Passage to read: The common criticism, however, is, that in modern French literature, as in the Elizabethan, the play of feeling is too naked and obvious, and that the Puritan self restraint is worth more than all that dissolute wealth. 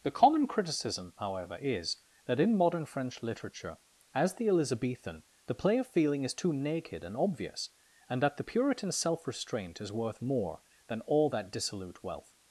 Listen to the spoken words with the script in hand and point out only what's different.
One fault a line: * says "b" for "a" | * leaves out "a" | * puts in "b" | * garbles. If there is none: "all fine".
* leaves out "in"